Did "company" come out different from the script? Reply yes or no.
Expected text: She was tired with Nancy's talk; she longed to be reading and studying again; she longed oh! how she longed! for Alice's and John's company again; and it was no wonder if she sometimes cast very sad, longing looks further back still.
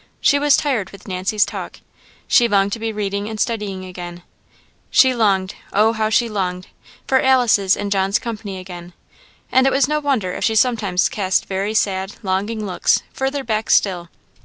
no